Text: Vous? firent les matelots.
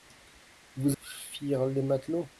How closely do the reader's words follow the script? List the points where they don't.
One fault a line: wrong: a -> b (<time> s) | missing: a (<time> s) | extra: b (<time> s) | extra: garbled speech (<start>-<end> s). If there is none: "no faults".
no faults